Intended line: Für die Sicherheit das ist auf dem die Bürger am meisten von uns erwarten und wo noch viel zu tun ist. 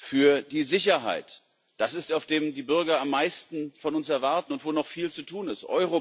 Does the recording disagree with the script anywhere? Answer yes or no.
no